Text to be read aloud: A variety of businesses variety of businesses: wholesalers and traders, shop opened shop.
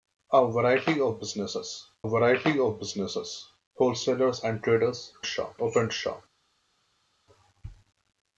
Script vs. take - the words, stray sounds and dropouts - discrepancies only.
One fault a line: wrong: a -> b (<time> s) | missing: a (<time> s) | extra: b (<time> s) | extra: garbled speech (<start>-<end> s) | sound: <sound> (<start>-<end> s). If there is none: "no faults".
no faults